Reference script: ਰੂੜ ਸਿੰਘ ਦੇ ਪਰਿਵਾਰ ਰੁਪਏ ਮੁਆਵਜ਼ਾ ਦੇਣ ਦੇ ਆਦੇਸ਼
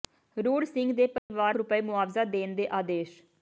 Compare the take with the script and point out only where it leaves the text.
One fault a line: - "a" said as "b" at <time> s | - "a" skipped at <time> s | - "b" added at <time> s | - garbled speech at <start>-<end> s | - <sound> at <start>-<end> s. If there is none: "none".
- dropout at 1.2-1.3 s